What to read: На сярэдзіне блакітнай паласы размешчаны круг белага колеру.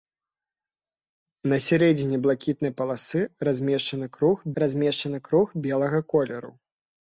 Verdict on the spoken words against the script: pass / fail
fail